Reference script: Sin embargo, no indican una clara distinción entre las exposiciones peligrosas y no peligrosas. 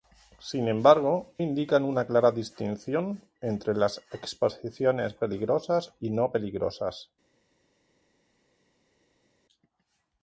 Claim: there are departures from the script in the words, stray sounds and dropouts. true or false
true